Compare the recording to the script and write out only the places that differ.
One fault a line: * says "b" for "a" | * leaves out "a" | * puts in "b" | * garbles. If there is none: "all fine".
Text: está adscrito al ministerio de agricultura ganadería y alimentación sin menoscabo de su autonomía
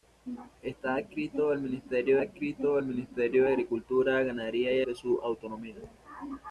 * puts in "adscrito al ministerio"
* leaves out "alimentación sin menoscabo"